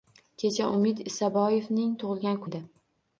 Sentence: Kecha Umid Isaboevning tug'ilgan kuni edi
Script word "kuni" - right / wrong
wrong